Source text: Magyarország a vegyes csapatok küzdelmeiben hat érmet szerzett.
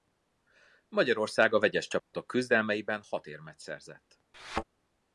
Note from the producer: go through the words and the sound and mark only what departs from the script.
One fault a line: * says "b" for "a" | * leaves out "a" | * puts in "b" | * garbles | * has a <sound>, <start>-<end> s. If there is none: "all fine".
* has a dropout, 2.0-2.1 s
* has a thud, 4.3-4.6 s